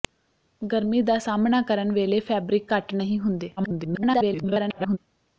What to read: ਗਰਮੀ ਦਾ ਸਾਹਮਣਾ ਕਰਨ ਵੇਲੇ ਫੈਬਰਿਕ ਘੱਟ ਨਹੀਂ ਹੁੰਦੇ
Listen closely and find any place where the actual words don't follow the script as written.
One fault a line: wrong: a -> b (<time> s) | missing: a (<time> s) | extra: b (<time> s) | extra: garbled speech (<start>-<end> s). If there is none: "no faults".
extra: garbled speech (3.6-5.0 s)